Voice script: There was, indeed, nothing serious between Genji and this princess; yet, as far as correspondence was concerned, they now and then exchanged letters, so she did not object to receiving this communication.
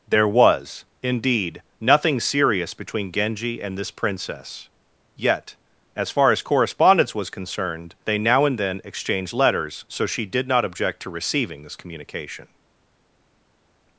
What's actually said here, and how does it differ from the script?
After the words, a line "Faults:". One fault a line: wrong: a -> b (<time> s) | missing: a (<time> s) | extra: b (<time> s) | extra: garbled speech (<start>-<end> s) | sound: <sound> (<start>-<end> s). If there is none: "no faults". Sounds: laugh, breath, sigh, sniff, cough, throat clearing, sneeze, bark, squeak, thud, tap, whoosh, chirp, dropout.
There was, indeed, nothing serious between Genji and this princess; yet, as far as correspondence was concerned, they now and then exchanged letters, so she did not object to receiving this communication.
Faults:
no faults